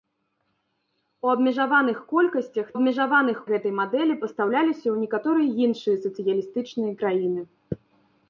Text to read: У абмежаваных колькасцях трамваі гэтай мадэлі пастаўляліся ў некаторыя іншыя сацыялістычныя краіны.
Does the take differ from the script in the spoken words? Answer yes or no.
yes